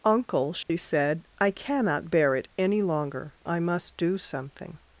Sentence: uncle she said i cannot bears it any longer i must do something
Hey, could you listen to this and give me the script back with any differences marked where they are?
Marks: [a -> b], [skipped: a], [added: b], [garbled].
uncle she said i cannot [bears -> bear] it any longer i must do something